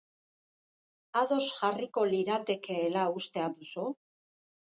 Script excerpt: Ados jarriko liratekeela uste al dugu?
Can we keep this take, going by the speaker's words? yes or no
no